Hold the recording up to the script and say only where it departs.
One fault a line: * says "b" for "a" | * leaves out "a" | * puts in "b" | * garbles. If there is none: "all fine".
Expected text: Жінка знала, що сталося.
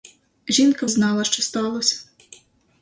all fine